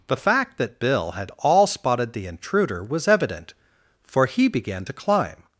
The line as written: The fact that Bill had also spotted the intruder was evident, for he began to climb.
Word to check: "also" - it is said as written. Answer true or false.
false